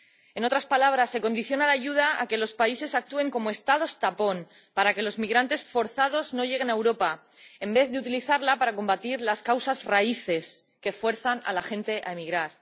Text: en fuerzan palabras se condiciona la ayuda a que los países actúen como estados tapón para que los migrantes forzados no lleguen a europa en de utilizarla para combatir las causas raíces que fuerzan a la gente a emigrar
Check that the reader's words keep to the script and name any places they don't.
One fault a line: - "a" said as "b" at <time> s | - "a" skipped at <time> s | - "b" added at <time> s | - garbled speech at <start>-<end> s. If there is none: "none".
- "fuerzan" said as "otras" at 0.4 s
- "vez" added at 7.7 s